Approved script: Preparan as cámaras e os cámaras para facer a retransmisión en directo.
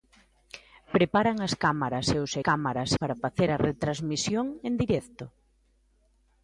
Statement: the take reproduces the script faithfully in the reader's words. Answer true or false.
true